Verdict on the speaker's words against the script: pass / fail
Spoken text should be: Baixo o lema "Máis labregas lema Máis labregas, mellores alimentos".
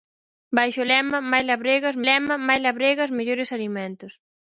pass